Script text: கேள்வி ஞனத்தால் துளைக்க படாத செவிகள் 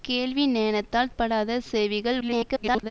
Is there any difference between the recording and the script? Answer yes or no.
yes